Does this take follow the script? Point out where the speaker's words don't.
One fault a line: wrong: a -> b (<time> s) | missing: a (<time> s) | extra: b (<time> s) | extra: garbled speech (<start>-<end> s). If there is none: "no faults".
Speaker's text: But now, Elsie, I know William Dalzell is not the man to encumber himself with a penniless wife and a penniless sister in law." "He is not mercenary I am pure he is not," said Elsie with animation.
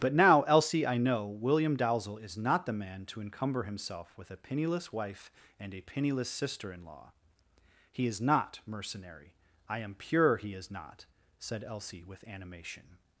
no faults